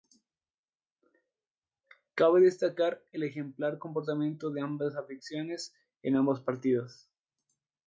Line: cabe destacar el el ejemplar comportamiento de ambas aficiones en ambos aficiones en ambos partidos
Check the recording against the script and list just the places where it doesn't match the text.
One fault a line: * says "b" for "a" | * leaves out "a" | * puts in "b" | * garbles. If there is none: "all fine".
* leaves out "el"
* leaves out "aficiones en ambos"